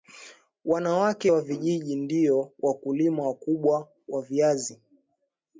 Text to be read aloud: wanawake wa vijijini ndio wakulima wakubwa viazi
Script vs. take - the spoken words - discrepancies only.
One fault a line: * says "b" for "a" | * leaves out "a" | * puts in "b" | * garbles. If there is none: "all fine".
* puts in "wa"